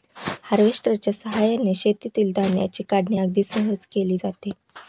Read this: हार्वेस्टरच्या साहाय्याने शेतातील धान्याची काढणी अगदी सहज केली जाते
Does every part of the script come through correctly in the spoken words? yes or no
yes